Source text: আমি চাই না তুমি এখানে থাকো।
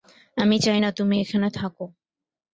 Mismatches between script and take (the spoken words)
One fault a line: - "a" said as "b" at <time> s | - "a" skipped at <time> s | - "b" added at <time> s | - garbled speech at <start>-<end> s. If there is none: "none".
none